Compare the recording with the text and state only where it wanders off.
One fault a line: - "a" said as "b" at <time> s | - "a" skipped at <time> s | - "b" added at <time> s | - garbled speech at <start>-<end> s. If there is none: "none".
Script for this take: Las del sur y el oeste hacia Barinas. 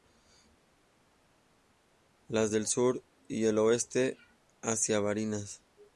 none